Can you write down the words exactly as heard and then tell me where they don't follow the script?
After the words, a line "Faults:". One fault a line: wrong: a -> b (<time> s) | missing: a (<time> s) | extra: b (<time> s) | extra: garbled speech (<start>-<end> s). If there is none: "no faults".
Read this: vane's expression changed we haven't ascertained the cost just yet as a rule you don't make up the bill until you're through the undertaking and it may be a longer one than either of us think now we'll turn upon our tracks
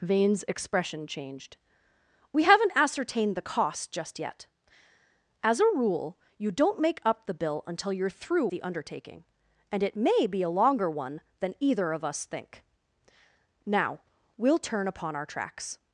vane's expression changed we haven't ascertained the cost just yet as a rule you don't make up the bill until you're through the undertaking and it may be a longer one than either of us think now we'll turn upon our tracks
Faults:
no faults